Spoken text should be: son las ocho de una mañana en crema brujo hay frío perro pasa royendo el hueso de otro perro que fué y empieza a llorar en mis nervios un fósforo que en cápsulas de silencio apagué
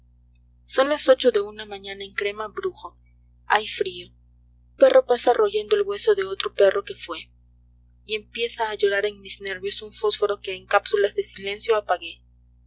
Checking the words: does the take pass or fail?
pass